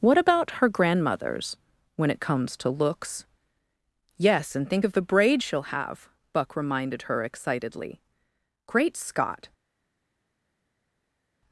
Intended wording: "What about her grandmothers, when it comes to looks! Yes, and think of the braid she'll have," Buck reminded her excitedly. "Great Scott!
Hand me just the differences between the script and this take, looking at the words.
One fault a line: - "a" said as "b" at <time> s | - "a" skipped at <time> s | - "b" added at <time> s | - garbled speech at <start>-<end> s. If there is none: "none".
none